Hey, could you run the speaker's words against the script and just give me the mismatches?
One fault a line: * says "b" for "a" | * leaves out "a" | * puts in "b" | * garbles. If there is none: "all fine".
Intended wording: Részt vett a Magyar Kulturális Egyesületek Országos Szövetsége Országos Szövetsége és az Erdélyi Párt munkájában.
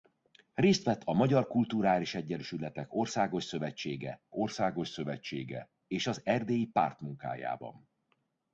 all fine